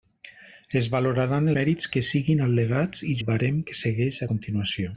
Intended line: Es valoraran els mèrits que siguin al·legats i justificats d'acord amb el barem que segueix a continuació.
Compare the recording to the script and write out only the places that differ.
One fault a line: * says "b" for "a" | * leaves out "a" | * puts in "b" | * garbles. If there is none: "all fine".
* leaves out "els"
* leaves out "justificats d'acord amb"